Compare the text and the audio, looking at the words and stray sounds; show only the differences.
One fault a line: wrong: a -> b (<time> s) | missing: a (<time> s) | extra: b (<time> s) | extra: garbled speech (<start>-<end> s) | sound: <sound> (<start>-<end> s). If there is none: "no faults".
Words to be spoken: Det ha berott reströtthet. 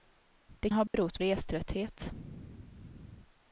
sound: dropout (0.9-0.9 s)